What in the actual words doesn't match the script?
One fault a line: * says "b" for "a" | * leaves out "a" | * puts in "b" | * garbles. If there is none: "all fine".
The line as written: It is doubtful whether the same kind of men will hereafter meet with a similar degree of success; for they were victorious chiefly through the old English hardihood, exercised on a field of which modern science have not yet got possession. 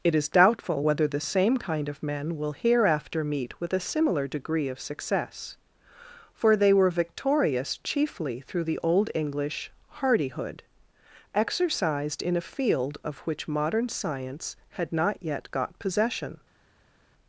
* says "in" for "on"
* says "had" for "have"